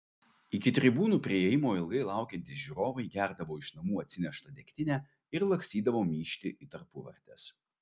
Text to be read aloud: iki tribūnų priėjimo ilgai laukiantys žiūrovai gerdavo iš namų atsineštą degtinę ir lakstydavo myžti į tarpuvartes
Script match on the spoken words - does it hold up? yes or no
yes